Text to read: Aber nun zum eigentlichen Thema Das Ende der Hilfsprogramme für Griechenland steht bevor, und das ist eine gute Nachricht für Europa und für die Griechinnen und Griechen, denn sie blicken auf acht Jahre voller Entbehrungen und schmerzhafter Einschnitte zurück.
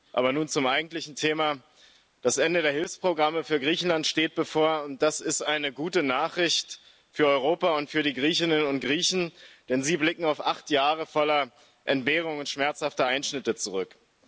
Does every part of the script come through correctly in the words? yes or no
yes